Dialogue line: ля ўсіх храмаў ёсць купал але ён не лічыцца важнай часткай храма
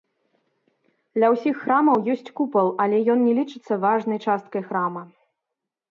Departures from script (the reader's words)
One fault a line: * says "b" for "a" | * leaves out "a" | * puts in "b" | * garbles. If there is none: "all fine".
all fine